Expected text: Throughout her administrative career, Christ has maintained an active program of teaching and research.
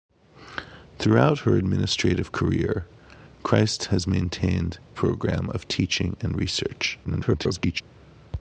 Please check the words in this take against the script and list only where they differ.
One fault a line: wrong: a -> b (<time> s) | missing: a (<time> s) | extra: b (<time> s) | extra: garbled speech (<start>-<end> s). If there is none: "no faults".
missing: an active (4.8 s)
extra: garbled speech (7.0-7.8 s)